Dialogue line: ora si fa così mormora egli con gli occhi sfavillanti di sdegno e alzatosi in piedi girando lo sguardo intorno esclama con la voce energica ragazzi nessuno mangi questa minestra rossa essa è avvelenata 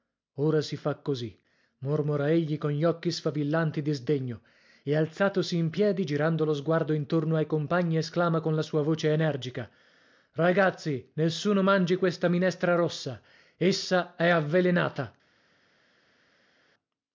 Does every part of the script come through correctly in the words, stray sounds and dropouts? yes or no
no